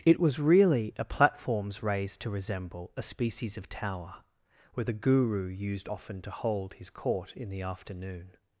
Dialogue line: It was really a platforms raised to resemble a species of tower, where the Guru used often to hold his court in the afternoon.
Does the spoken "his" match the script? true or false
true